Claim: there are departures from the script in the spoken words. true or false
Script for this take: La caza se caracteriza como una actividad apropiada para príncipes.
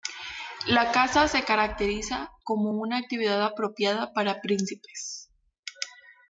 false